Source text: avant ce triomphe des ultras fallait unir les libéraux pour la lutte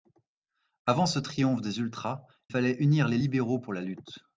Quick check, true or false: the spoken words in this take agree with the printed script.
true